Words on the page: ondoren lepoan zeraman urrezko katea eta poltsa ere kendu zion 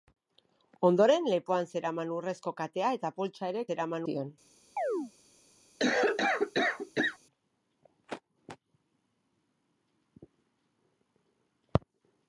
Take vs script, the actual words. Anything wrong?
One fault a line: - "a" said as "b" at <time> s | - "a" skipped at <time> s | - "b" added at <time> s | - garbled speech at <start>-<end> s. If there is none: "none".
- "kendu" said as "zeraman" at 3.7 s